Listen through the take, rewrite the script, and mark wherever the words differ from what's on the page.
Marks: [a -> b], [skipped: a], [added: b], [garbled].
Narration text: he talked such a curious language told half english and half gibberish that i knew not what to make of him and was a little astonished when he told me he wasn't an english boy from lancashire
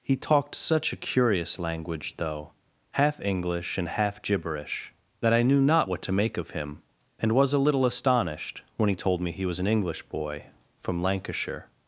he talked such a curious language [told -> though] half english and half gibberish that i knew not what to make of him and was a little astonished when he told me he [wasn't -> was] an english boy from lancashire